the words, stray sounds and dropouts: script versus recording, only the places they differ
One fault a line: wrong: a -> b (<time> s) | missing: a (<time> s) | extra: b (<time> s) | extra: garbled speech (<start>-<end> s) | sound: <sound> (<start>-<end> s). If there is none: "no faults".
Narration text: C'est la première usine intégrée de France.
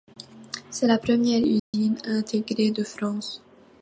sound: dropout (1.6-1.7 s)